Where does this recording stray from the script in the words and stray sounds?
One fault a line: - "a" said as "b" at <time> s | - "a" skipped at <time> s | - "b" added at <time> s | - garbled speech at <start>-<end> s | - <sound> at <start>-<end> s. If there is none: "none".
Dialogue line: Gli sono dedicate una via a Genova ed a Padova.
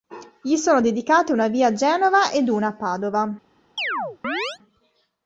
- "una" added at 2.5 s
- chirp at 3.8-4.6 s